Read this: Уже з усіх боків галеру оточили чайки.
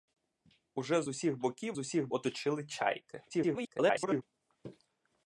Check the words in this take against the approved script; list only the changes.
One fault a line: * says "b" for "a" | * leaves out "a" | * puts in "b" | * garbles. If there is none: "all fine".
* says "усіх" for "галеру"
* garbles